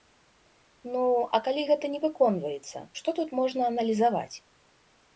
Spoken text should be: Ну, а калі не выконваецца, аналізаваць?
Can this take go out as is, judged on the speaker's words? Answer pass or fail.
fail